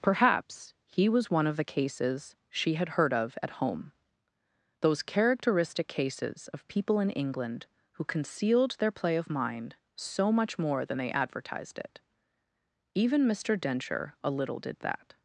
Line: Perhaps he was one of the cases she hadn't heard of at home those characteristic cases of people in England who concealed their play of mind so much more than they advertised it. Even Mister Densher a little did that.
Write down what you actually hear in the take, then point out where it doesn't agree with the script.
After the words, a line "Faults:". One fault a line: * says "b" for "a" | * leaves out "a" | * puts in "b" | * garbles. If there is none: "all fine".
Perhaps he was one of the cases she had heard of at home those characteristic cases of people in England who concealed their play of mind so much more than they advertised it. Even Mister Densher a little did that.
Faults:
* says "had" for "hadn't"